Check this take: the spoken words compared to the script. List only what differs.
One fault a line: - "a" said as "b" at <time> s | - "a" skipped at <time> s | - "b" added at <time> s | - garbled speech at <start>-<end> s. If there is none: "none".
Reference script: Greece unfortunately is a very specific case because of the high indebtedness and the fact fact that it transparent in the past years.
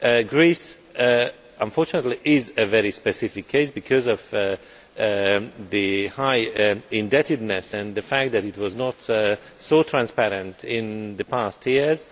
- "fact" skipped at 8.3 s
- "was not so" added at 8.6 s